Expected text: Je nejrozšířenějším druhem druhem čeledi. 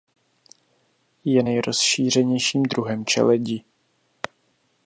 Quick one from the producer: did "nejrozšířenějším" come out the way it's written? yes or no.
yes